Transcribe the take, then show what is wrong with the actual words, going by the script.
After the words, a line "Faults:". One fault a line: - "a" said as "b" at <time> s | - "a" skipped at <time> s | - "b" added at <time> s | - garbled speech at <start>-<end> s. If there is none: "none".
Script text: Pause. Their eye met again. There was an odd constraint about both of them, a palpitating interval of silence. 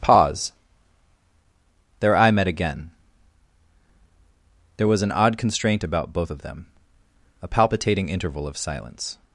Pause. Their eye met again. There was an odd constraint about both of them, a palpitating interval of silence.
Faults:
none